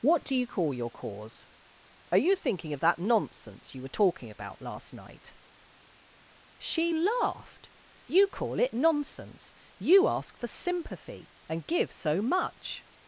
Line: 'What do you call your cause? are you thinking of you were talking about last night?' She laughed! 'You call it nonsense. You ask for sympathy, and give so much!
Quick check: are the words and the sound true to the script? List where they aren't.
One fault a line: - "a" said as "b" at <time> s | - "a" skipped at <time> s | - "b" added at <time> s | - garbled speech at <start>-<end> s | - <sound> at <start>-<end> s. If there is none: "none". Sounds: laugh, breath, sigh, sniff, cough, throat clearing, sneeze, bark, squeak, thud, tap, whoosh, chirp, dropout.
- "that nonsense" added at 2.8 s